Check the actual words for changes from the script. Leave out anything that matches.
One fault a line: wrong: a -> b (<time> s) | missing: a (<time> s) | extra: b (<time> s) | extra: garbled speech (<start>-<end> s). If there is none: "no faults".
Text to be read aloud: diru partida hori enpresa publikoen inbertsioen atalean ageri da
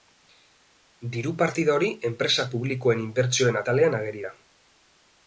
no faults